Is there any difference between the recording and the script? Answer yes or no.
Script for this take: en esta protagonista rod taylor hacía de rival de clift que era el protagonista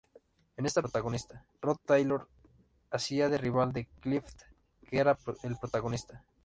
no